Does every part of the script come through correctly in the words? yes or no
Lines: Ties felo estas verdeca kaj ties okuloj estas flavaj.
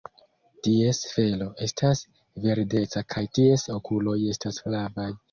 yes